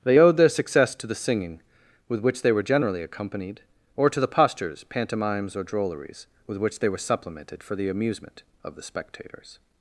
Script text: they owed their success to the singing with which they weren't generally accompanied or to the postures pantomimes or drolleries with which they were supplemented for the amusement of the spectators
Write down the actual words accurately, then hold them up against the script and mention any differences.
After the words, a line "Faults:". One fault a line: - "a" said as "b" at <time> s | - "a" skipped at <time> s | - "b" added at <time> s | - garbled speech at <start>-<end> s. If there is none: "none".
they owed their success to the singing with which they were generally accompanied or to the postures pantomimes or drolleries with which they were supplemented for the amusement of the spectators
Faults:
- "weren't" said as "were" at 2.5 s